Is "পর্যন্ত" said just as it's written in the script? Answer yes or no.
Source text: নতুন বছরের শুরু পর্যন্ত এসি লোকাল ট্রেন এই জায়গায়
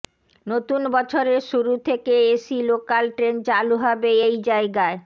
no